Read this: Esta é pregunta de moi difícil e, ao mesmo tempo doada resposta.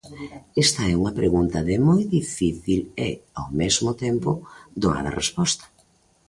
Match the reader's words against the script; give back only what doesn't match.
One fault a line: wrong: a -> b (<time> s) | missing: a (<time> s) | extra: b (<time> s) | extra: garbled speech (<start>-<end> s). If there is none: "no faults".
extra: unha (1.0 s)